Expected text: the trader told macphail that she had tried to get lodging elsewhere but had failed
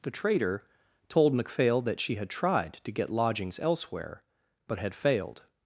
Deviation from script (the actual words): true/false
true